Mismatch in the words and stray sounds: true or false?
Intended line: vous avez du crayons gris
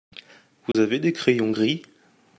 true